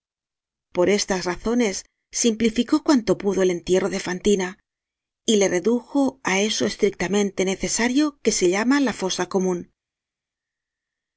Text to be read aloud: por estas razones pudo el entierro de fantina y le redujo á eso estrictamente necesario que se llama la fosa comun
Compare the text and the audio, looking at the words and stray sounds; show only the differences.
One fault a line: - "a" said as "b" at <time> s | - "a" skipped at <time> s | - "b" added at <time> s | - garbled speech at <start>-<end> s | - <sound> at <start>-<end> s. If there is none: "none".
- "simplificó cuanto" added at 2.1 s